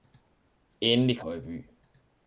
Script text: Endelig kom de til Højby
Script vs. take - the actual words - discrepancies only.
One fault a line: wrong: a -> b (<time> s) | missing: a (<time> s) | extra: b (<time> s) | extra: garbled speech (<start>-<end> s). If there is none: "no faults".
missing: kom de til (1.2 s)